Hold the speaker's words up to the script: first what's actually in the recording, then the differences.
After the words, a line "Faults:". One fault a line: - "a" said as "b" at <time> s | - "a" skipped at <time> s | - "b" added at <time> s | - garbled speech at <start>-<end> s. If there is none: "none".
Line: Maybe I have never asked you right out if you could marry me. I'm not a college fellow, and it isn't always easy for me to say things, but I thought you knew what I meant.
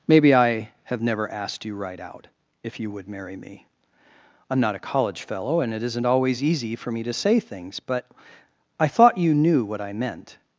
Maybe I have never asked you right out if you would marry me. I'm not a college fellow, and it isn't always easy for me to say things, but I thought you knew what I meant.
Faults:
- "could" said as "would" at 2.9 s